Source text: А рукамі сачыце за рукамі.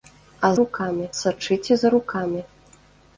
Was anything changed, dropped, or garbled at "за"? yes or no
no